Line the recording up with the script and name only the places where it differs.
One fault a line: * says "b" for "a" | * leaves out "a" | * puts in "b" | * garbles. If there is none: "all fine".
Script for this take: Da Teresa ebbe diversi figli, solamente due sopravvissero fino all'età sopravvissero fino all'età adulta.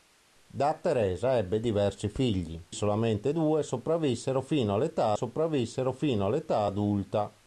all fine